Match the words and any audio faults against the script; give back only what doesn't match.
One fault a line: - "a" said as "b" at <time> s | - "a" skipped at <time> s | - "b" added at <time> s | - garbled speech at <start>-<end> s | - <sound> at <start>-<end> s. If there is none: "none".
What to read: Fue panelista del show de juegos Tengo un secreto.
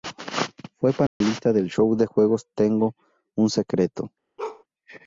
- dropout at 1.1-1.2 s
- bark at 4.4-4.6 s